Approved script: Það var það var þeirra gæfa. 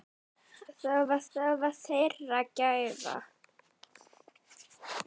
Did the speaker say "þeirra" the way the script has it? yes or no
yes